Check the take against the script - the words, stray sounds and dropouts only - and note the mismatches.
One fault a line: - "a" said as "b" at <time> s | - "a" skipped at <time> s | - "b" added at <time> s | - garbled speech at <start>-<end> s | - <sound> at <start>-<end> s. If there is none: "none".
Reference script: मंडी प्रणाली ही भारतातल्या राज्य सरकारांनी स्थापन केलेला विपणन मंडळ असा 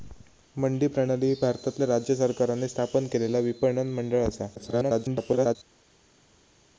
- garbled speech at 4.6-5.6 s